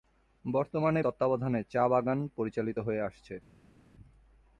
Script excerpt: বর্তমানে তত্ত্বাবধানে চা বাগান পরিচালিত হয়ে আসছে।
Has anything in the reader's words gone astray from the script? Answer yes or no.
no